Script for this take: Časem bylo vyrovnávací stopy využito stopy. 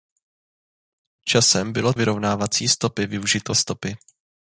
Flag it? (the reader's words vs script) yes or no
no